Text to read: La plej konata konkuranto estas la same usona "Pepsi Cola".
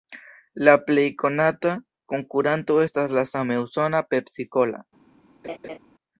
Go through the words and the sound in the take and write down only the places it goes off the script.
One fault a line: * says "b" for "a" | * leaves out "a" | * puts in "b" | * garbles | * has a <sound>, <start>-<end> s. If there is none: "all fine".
* has a laugh, 5.4-5.8 s